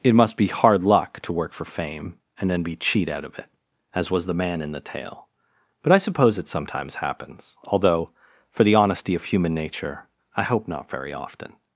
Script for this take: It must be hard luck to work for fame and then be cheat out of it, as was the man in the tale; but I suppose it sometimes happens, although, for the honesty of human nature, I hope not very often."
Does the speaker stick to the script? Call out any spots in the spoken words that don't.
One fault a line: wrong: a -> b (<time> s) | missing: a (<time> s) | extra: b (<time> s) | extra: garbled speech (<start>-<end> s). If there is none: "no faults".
no faults